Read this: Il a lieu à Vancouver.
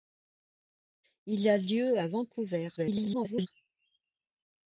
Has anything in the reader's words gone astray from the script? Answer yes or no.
yes